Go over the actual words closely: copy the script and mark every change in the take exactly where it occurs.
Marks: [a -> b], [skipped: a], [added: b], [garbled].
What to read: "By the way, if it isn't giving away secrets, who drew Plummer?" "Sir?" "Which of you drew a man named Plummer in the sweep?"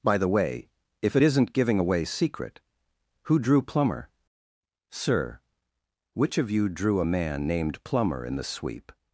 "By the way, if it isn't giving away [secrets, -> secret] who drew Plummer?" "Sir?" "Which of you drew a man named Plummer in the sweep?"